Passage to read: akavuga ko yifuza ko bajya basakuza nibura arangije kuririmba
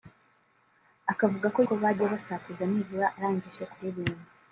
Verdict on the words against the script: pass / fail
fail